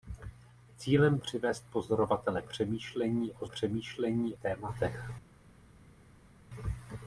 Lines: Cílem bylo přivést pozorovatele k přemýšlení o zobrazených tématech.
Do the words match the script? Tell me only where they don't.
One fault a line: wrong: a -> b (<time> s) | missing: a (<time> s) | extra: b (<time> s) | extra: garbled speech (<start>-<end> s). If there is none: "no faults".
missing: bylo (1.2 s)
missing: k (2.4 s)
wrong: zobrazených -> přemýšlení (3.5 s)